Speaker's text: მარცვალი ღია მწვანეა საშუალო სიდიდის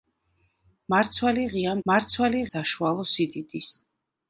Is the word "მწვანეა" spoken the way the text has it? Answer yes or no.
no